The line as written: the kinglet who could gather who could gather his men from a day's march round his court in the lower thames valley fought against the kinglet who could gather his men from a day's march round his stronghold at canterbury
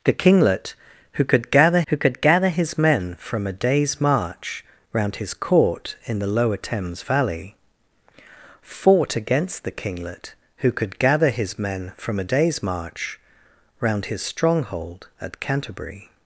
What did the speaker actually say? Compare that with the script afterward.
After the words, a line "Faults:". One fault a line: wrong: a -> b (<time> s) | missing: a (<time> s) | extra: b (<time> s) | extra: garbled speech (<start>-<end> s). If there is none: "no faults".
the kinglet who could gather who could gather his men from a day's march round his court in the lower thames valley fought against the kinglet who could gather his men from a day's march round his stronghold at canterbury
Faults:
no faults